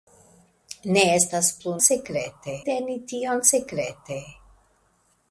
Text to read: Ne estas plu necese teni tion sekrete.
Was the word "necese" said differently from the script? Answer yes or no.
yes